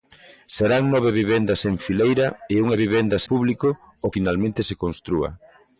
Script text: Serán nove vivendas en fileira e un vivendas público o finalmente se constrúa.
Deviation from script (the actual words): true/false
false